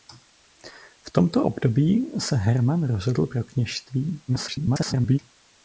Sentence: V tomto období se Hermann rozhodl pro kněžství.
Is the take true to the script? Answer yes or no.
no